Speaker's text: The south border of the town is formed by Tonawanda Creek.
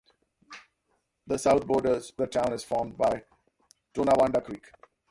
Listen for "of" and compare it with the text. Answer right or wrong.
wrong